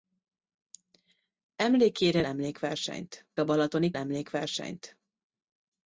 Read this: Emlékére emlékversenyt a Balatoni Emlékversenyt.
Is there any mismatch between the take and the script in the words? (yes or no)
no